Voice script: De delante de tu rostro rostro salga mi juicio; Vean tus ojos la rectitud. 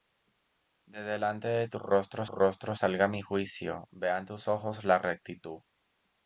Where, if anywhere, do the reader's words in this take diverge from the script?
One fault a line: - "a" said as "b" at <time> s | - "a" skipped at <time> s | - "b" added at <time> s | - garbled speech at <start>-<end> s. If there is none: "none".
none